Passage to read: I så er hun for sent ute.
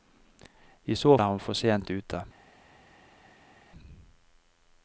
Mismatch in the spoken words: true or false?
false